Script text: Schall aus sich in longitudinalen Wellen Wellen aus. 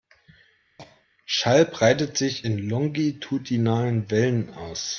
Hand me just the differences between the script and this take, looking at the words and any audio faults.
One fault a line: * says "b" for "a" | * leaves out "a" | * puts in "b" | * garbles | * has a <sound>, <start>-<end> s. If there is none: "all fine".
* has a cough, 0.8-1.1 s
* says "breitet" for "aus"
* leaves out "Wellen"